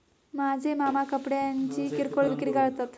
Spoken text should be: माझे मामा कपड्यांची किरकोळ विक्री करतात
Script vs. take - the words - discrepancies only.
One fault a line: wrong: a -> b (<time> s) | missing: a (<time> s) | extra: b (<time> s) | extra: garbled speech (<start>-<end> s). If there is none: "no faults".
no faults